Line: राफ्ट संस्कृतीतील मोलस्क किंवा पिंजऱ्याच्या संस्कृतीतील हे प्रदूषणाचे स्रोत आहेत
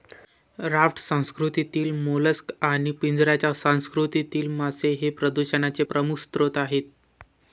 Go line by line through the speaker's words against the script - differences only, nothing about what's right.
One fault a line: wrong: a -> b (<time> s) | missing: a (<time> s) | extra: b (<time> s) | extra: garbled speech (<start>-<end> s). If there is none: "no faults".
wrong: किंवा -> आणि (2.6 s)
extra: मासे (4.5 s)
extra: प्रमुख (5.8 s)